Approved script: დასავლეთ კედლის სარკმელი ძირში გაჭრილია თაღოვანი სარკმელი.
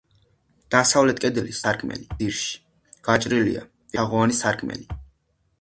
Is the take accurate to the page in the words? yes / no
yes